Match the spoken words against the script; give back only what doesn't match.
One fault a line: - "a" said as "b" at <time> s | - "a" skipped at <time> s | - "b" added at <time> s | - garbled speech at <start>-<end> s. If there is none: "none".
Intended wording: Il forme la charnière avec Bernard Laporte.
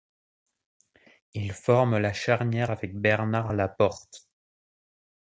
none